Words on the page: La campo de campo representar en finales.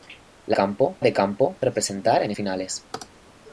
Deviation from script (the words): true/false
false